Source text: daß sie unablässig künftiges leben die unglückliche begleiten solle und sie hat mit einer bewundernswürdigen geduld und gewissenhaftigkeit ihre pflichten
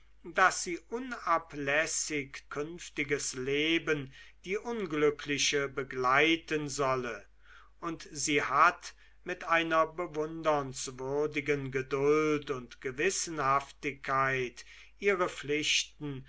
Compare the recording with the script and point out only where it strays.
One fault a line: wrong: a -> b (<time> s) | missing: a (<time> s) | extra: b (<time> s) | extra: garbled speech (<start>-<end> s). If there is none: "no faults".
no faults